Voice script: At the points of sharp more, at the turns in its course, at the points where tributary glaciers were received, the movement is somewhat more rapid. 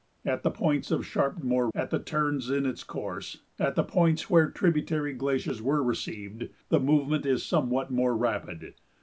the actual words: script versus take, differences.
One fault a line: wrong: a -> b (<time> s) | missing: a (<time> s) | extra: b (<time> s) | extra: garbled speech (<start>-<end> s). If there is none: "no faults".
no faults